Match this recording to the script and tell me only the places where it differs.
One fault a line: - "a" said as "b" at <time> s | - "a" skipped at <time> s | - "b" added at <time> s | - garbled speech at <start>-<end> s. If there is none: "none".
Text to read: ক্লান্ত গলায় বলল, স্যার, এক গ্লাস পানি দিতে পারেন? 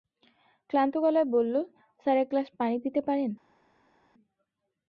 none